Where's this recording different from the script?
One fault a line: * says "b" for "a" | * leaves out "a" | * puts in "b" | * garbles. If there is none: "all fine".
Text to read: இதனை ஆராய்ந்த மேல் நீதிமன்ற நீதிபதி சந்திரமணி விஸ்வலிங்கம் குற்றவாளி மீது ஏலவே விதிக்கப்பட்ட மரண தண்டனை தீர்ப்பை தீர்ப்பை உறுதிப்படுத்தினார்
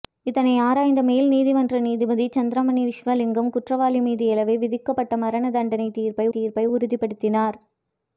all fine